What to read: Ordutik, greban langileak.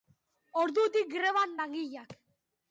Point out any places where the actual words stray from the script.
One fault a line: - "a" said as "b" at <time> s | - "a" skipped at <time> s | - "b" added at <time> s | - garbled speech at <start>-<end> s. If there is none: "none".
none